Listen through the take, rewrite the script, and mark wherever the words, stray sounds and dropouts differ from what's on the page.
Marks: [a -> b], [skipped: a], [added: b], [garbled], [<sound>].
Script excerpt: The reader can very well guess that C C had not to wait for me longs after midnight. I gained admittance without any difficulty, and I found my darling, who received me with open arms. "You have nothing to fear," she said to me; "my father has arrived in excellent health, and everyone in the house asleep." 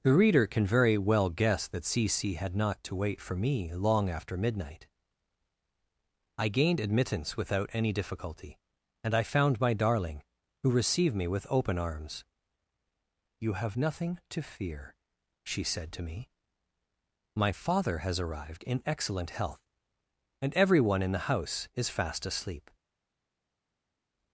The reader can very well guess that C C had not to wait for me [longs -> long] after midnight. I gained admittance without any difficulty, and I found my darling, who received me with open arms. "You have nothing to fear," she said to me; "my father has arrived in excellent health, and everyone in the house [added: is fast] asleep."